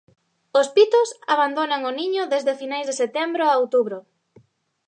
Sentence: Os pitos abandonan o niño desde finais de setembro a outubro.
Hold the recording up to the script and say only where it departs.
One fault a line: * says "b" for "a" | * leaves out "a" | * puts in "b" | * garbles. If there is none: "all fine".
all fine